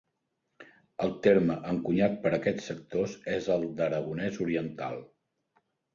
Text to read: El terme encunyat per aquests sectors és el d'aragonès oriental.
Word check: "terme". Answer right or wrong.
right